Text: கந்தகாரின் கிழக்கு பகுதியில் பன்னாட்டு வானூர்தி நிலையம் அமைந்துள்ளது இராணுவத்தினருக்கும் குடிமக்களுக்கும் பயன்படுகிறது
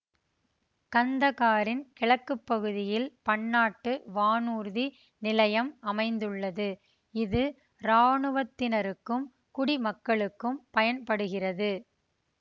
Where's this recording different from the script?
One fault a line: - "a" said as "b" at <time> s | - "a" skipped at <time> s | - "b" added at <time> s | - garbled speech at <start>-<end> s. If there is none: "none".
- "இது" added at 7.1 s